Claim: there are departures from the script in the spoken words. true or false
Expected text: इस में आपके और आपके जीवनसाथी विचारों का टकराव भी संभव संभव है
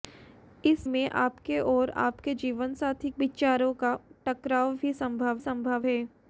false